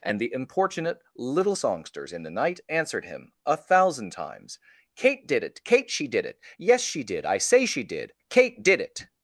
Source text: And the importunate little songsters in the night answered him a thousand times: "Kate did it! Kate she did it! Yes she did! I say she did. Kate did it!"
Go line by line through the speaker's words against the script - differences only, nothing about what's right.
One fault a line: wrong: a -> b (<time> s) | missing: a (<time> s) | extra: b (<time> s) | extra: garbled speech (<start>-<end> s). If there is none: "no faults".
no faults